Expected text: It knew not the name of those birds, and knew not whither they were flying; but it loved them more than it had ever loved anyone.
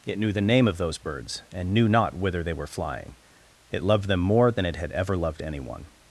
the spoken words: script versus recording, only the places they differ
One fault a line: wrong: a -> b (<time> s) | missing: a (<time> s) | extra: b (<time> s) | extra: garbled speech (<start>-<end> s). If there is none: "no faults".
missing: not (0.3 s)
missing: but (3.1 s)